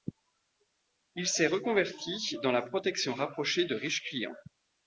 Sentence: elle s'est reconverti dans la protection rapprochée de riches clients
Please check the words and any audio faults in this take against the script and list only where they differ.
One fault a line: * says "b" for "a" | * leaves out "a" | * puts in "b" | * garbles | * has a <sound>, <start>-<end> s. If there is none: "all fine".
* says "il" for "elle"